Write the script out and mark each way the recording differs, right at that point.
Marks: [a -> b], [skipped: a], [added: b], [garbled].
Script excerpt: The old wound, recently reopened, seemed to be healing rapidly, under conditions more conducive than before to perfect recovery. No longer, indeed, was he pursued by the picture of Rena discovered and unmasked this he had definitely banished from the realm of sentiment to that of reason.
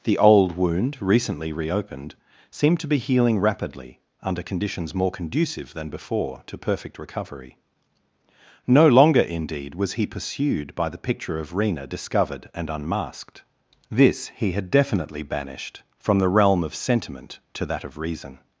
The old wound, recently reopened, seemed to be healing rapidly, under conditions more conducive than before to perfect recovery. No longer, indeed, was he pursued by the picture of Rena discovered and unmasked this he had definitely banished from the realm of sentiment to that of reason.